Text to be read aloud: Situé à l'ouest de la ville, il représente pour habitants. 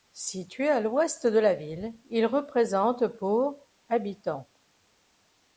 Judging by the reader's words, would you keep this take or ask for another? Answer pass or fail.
pass